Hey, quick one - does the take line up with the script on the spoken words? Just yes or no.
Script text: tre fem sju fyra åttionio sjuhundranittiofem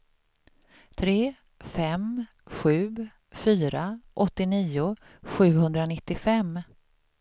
yes